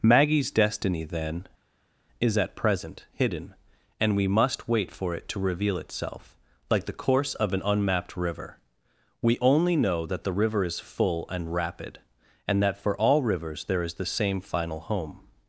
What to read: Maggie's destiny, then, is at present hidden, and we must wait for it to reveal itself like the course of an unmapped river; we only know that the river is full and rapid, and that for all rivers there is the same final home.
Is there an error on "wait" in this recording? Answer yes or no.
no